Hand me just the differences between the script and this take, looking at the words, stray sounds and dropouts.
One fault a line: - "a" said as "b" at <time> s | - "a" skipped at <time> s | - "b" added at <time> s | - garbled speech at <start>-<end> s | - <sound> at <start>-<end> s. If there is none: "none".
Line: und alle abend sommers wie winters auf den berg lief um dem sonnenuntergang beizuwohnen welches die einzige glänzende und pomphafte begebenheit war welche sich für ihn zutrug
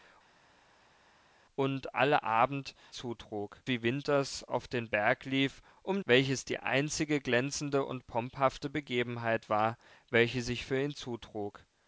- "sommers" said as "zutrug" at 2.9 s
- "dem sonnenuntergang beizuwohnen" skipped at 6.0 s